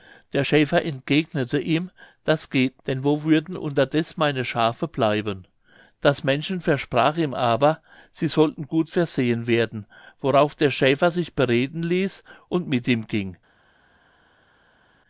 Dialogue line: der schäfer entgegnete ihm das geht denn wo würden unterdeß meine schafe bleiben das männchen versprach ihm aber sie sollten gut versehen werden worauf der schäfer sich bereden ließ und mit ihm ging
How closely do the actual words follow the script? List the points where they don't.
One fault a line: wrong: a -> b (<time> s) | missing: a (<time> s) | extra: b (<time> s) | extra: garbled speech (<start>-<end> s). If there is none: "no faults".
no faults